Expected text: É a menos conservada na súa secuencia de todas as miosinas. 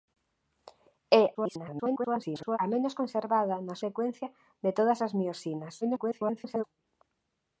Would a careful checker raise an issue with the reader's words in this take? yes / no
yes